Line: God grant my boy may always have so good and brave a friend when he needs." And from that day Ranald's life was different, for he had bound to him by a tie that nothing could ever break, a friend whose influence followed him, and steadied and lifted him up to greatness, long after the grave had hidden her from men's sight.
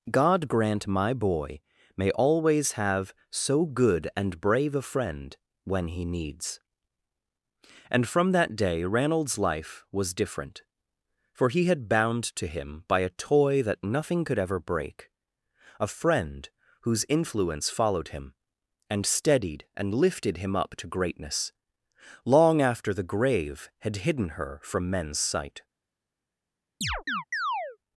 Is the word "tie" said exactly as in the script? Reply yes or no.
no